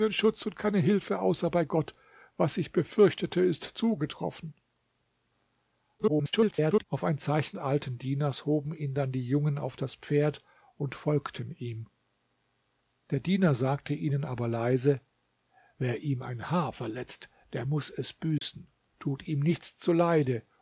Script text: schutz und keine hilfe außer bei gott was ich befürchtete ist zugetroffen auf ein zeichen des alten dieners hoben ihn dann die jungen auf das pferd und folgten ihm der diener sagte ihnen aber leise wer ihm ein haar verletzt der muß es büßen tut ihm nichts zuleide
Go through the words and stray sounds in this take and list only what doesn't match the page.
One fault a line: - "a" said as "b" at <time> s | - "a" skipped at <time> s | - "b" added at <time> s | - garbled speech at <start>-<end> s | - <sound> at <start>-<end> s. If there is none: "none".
- garbled speech at 6.0-6.8 s
- "des" skipped at 7.6 s
- dropout at 18.4-18.4 s